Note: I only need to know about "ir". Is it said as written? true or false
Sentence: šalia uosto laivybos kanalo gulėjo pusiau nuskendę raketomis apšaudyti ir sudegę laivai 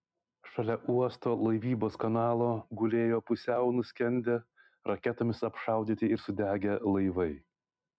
true